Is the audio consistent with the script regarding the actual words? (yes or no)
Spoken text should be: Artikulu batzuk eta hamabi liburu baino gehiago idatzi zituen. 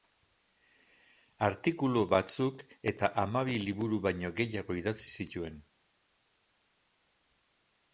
yes